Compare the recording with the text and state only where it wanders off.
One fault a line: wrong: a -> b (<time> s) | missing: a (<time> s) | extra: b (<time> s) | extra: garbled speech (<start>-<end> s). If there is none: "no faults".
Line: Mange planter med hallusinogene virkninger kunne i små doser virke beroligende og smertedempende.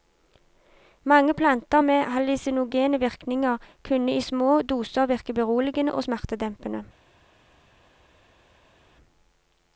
no faults